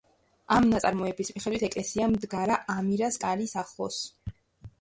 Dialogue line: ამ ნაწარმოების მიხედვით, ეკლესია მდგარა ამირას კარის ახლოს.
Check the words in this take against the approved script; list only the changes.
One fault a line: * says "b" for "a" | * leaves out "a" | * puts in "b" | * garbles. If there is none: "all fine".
all fine